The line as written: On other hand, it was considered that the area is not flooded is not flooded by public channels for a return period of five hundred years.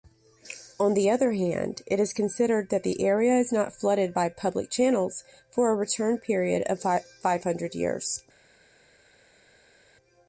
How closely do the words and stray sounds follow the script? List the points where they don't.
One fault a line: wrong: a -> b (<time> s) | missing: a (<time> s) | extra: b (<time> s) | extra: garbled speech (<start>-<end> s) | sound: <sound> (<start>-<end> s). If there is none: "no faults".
extra: the (0.9 s)
wrong: was -> is (2.0 s)
missing: is not flooded (4.2 s)